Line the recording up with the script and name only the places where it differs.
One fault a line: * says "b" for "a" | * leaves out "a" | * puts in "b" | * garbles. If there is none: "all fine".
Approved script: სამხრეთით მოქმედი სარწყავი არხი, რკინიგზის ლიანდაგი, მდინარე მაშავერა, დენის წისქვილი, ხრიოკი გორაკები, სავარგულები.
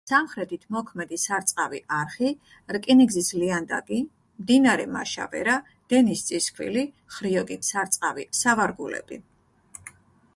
* says "სარწყავი" for "გორაკები"